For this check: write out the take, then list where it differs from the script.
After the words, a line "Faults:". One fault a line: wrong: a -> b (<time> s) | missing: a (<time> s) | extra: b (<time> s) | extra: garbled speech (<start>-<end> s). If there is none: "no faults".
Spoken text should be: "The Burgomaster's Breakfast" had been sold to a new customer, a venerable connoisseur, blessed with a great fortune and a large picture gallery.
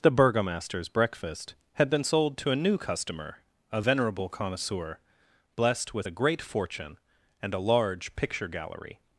"The Burgomaster's Breakfast" had been sold to a new customer, a venerable connoisseur, blessed with a great fortune and a large picture gallery.
Faults:
no faults